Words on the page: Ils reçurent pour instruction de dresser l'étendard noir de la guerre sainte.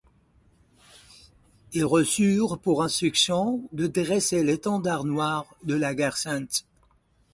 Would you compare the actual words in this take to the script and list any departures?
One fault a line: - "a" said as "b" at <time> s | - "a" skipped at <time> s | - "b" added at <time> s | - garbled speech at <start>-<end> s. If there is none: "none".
none